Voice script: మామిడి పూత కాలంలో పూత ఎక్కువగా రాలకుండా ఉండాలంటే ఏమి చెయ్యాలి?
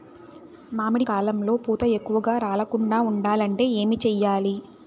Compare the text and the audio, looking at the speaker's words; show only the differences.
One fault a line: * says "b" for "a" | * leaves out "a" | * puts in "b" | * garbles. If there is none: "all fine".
* leaves out "పూత"